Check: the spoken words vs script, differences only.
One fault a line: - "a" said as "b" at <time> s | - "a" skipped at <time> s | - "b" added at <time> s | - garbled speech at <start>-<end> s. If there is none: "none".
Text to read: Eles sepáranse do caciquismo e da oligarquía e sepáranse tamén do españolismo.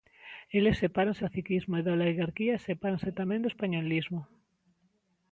- "do" skipped at 1.2 s